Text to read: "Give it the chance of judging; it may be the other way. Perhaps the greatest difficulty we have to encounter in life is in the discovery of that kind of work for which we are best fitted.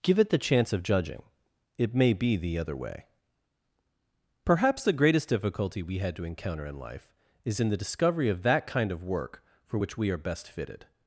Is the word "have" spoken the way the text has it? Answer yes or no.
no